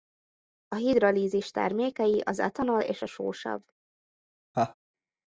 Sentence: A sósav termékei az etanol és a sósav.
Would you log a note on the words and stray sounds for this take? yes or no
yes